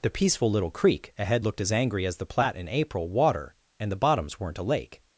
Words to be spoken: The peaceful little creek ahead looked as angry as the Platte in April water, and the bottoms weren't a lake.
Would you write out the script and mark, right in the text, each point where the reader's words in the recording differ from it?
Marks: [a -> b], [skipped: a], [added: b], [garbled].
The peaceful little creek ahead looked as angry as the Platte in April water, and the bottoms weren't a lake.